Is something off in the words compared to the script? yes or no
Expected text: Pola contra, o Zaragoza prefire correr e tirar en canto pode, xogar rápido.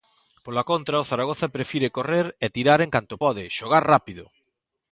no